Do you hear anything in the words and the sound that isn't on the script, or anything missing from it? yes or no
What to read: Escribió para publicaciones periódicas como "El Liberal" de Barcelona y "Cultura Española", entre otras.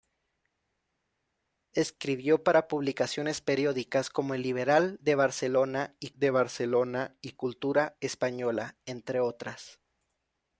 yes